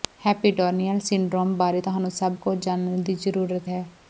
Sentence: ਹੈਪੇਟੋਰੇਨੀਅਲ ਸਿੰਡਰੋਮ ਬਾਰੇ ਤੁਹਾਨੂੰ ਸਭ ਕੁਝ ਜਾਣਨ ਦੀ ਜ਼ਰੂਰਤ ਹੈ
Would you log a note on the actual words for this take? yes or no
no